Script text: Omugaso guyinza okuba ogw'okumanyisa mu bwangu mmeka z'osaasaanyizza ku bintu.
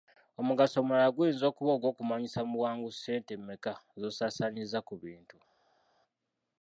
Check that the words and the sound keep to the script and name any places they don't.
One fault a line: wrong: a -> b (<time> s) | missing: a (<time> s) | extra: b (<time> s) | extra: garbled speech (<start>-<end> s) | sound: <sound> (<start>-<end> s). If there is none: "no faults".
extra: omulala (0.8 s)
extra: ssente (2.9 s)